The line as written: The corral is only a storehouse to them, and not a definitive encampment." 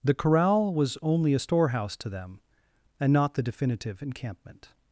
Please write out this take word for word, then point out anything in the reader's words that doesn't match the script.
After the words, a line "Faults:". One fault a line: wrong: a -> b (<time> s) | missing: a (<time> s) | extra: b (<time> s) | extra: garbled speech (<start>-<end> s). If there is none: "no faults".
The corral was only a storehouse to them, and not the definitive encampment."
Faults:
wrong: is -> was (0.7 s)
wrong: a -> the (3.3 s)